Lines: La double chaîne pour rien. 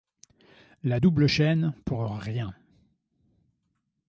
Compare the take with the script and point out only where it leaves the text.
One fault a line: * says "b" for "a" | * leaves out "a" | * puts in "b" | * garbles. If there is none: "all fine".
all fine